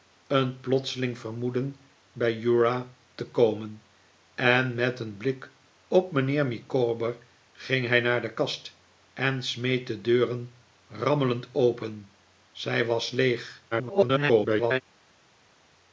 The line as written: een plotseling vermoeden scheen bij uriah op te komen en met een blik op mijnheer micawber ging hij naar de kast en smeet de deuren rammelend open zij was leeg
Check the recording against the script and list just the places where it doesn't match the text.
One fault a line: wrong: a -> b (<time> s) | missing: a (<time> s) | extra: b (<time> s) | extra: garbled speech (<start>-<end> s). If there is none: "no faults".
missing: scheen (1.8 s)
missing: op (2.9 s)
extra: garbled speech (13.7-14.8 s)